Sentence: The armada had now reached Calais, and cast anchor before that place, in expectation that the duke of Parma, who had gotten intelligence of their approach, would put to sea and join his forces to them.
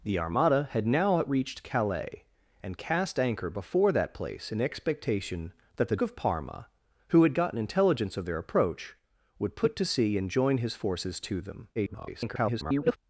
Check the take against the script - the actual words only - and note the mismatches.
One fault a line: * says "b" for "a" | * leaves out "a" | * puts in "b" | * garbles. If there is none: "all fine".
* leaves out "duke"
* garbles